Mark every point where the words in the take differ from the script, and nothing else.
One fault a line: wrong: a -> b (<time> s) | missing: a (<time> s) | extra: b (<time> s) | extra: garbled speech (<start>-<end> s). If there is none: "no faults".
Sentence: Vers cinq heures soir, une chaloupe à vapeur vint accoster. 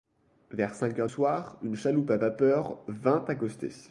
no faults